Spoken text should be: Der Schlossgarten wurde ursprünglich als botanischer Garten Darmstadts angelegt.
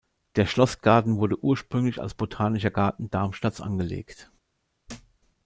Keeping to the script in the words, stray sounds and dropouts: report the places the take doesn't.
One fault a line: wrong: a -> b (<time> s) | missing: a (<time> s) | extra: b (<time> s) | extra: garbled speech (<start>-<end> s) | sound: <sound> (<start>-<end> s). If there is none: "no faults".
sound: thud (4.9-5.2 s)